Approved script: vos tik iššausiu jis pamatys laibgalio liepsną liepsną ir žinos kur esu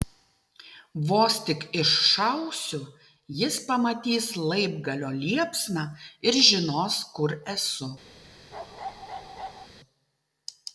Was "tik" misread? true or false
false